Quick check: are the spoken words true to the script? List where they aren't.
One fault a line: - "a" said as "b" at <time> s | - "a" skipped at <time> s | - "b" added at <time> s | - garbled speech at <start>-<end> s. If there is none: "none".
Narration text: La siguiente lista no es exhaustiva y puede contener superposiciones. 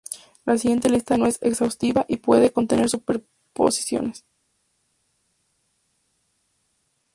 none